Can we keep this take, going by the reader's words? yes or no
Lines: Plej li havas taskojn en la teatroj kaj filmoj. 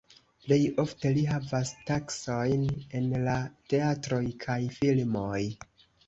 no